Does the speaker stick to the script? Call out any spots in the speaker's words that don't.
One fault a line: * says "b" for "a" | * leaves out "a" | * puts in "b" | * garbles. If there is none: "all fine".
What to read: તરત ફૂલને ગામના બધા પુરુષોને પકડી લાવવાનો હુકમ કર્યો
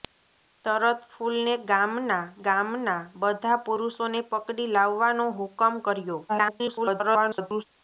* puts in "ગામના"
* garbles